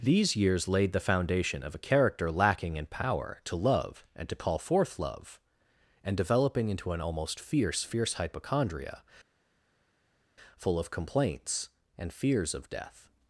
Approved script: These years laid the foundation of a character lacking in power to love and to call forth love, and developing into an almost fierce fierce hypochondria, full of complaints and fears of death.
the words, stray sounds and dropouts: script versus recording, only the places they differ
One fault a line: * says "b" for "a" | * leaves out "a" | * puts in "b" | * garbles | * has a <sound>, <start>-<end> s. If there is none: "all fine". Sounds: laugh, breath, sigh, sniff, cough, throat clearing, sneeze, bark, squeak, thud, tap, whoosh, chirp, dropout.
all fine